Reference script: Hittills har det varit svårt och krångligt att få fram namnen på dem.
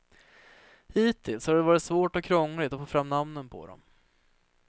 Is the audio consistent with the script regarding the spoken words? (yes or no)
yes